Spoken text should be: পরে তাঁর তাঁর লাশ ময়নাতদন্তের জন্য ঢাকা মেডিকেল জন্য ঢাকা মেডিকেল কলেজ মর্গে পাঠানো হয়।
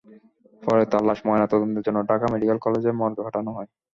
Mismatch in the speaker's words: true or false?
true